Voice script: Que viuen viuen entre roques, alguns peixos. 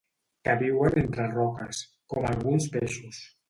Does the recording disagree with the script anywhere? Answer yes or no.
yes